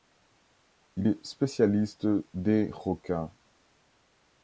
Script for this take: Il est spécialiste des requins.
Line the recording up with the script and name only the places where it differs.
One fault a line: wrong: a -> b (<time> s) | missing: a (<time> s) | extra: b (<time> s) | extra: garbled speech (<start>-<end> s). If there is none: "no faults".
no faults